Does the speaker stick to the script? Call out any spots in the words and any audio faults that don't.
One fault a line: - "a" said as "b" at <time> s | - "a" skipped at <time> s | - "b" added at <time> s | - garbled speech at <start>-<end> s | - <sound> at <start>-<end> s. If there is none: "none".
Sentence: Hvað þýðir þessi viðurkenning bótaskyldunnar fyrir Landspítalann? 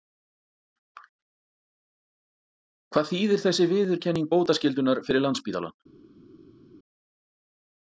none